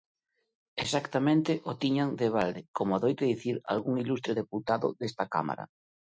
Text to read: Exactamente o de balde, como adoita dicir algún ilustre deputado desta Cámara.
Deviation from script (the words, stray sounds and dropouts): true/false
true